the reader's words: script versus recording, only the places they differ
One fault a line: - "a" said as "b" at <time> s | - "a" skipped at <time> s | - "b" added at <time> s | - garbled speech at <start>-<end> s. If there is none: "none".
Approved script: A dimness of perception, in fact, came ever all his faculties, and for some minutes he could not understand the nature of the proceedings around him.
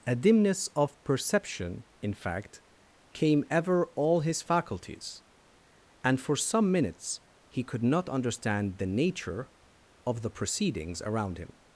none